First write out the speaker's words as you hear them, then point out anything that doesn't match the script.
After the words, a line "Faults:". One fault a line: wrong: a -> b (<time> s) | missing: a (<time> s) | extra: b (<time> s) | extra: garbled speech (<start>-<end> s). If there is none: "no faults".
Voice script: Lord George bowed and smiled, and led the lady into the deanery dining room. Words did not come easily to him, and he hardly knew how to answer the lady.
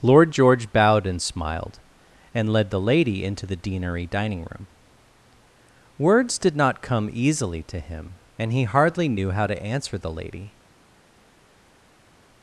Lord George bowed and smiled, and led the lady into the deanery dining room. Words did not come easily to him, and he hardly knew how to answer the lady.
Faults:
no faults